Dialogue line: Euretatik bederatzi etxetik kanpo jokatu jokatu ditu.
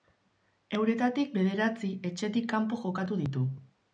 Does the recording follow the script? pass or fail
fail